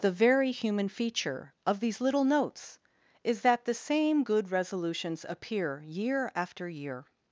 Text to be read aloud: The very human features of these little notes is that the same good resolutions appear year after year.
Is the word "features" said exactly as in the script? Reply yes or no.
no